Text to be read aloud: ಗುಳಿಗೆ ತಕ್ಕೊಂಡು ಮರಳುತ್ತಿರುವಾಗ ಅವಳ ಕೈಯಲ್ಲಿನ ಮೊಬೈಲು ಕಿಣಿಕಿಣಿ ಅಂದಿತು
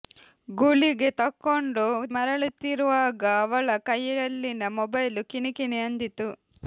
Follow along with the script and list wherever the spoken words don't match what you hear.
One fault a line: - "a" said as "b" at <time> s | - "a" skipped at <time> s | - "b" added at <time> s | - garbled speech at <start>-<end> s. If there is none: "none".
none